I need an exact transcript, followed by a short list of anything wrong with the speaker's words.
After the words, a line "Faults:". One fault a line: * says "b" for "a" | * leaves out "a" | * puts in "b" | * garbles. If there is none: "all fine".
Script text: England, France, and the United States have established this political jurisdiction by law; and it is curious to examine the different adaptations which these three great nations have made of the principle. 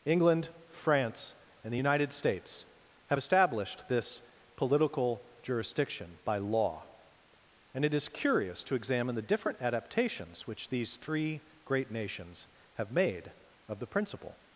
England, France, and the United States have established this political jurisdiction by law; and it is curious to examine the different adaptations which these three great nations have made of the principle.
Faults:
all fine